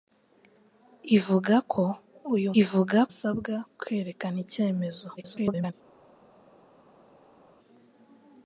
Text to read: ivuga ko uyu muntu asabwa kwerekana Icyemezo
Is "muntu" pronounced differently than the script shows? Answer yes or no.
yes